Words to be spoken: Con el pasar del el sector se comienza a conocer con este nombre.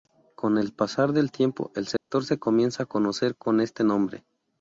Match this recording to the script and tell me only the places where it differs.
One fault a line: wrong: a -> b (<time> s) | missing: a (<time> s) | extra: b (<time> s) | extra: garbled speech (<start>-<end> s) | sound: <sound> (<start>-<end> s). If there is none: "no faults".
extra: tiempo (1.3 s)
sound: dropout (2.0-2.1 s)